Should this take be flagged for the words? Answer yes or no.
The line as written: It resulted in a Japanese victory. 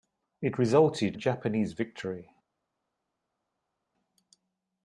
yes